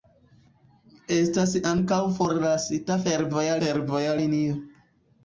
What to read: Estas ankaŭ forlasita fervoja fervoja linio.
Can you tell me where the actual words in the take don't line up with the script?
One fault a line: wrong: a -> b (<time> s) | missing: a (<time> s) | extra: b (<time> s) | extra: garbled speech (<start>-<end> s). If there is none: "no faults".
no faults